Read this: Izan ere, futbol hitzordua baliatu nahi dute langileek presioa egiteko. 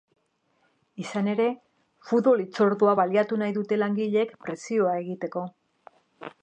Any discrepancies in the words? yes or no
no